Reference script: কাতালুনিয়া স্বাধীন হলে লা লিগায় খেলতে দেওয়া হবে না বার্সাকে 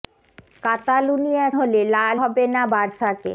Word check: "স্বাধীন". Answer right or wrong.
wrong